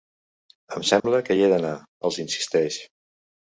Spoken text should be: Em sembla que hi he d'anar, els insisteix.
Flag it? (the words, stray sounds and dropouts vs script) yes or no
yes